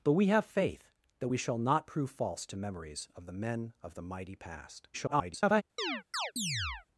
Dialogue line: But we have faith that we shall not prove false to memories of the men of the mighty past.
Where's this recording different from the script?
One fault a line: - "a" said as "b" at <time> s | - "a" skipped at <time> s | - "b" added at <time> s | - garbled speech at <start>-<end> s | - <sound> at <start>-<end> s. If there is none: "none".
- garbled speech at 4.9-5.6 s
- chirp at 5.8-6.9 s